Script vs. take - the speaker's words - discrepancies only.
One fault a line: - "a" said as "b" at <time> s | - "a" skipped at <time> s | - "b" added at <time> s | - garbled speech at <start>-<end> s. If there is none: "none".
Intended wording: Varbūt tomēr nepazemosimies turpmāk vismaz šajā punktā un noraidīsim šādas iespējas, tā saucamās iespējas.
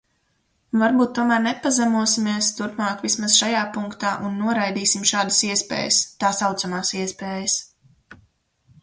none